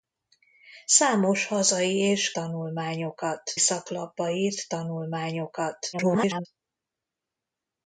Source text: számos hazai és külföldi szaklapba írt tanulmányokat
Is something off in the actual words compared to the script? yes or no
yes